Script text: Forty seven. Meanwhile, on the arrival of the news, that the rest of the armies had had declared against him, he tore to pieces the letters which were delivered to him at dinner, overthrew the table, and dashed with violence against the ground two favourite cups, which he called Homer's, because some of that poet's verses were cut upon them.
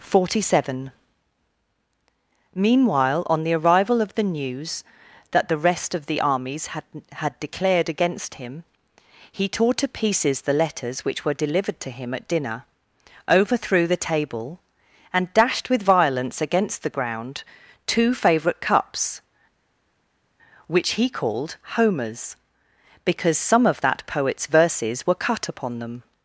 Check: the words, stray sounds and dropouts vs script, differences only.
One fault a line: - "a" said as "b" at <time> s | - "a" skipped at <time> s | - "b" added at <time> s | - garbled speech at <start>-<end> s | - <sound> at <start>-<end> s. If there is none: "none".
none